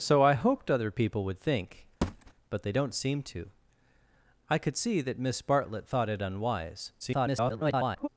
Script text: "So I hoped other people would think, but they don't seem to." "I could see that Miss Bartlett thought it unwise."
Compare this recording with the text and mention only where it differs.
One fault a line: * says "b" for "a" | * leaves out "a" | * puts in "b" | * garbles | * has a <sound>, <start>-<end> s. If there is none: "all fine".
* has a thud, 2.0-2.3 s
* garbles